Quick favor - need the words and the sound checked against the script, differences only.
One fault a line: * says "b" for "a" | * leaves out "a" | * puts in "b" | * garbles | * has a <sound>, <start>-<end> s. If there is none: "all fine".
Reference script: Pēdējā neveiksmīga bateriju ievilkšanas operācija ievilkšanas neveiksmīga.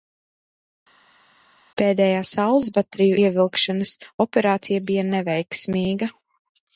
* says "saules" for "neveiksmīga"
* says "bija" for "ievilkšanas"